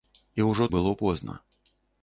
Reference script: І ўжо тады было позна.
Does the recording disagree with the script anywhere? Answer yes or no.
yes